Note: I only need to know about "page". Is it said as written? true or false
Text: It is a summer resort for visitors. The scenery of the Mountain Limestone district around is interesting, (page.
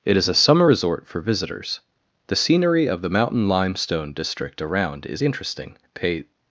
false